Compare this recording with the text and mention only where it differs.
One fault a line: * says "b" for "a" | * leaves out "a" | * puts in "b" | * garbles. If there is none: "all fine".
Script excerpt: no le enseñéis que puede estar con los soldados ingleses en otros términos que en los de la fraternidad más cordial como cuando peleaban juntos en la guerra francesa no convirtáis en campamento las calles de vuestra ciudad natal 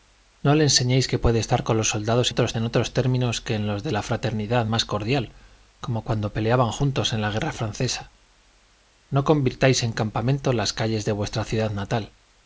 * says "otros" for "ingleses"